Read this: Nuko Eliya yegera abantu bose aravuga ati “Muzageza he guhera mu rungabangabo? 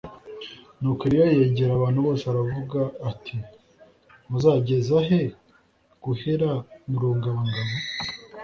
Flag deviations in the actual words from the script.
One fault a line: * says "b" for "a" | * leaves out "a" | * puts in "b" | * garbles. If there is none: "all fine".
all fine